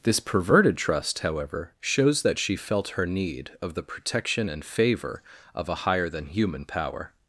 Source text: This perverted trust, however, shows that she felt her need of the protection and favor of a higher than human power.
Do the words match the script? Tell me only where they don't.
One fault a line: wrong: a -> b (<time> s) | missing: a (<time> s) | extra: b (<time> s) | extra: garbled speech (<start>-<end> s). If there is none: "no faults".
no faults